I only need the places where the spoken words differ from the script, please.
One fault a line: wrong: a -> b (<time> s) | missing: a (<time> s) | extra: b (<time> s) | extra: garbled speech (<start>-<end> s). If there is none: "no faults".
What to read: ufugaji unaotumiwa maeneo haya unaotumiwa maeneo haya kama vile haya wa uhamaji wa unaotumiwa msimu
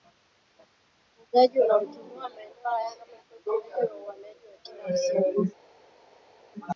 missing: unaotumiwa maeneo haya (2.9 s)
wrong: haya -> ufugaji (3.6 s)
wrong: unaotumiwa -> kila (4.6 s)